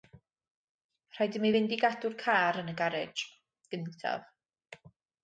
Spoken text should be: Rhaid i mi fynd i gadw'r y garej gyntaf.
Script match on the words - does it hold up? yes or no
no